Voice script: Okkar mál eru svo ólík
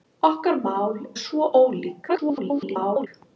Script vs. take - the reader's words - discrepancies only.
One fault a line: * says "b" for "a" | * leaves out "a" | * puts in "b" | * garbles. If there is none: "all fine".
* leaves out "eru"
* garbles